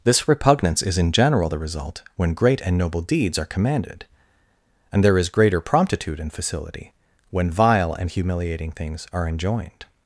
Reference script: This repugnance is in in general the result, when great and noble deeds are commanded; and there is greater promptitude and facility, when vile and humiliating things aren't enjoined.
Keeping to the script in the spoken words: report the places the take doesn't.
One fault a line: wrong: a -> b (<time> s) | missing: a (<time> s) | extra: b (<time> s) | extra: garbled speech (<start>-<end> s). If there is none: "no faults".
missing: in (1.1 s)
wrong: aren't -> are (9.1 s)